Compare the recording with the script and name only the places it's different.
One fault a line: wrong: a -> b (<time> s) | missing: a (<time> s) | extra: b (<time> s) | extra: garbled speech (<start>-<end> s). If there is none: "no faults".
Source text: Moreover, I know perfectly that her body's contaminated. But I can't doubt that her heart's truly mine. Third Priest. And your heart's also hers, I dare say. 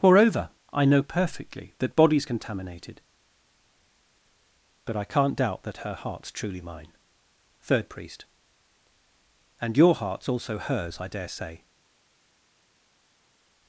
missing: her (1.9 s)